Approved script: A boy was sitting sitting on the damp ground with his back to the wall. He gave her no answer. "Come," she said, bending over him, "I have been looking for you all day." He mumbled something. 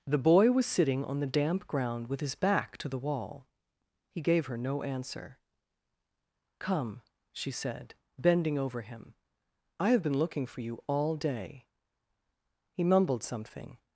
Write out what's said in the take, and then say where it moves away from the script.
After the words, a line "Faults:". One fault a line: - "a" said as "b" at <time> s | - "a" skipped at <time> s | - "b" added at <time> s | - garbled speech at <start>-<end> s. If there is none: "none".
The boy was sitting on the damp ground with his back to the wall. He gave her no answer. "Come," she said, bending over him, "I have been looking for you all day." He mumbled something.
Faults:
- "A" said as "The" at 0.1 s
- "sitting" skipped at 1.1 s